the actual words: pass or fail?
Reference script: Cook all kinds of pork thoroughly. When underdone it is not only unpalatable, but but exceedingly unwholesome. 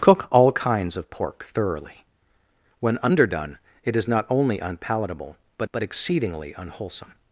pass